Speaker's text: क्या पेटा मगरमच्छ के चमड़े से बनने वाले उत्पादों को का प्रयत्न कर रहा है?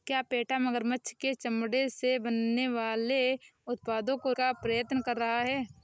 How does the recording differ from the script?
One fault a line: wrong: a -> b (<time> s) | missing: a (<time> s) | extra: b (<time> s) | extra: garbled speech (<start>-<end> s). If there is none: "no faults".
no faults